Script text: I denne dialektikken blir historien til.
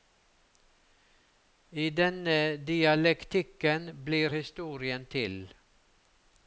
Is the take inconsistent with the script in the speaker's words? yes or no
no